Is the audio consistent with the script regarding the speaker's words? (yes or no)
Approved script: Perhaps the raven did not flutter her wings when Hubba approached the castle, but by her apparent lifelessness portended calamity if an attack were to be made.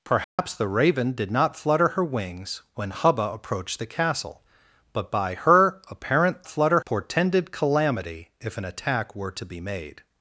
no